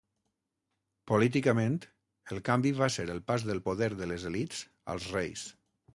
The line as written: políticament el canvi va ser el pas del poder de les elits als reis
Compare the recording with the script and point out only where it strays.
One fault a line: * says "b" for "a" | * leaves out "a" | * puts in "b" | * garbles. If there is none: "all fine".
all fine